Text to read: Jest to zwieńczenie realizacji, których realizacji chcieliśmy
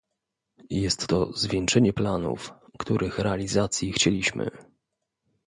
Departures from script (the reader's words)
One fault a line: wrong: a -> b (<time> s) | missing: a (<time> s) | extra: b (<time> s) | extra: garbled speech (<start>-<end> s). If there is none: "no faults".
wrong: realizacji -> planów (1.9 s)